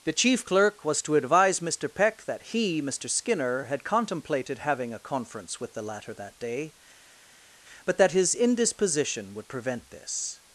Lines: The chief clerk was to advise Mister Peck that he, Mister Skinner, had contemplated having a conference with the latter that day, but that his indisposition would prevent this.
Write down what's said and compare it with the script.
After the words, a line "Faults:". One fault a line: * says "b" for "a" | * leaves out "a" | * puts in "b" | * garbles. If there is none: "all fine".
The chief clerk was to advise Mister Peck that he, Mister Skinner, had contemplated having a conference with the latter that day, but that his indisposition would prevent this.
Faults:
all fine